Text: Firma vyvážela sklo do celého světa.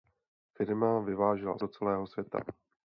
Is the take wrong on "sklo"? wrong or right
wrong